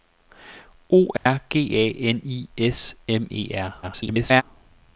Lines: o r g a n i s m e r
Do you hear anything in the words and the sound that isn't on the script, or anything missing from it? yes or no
yes